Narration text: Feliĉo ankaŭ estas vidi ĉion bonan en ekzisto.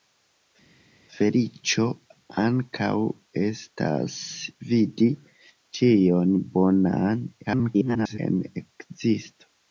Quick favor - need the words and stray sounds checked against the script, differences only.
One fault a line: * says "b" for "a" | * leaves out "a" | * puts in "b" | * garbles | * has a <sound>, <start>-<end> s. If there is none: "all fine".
* garbles